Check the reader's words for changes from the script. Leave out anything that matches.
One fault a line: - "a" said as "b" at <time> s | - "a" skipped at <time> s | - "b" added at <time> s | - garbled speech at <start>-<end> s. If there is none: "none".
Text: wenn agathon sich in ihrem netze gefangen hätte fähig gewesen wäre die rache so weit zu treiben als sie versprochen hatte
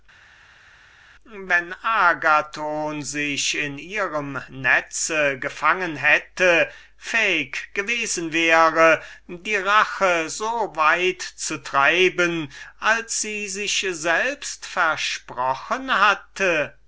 - "sich selbst" added at 13.5 s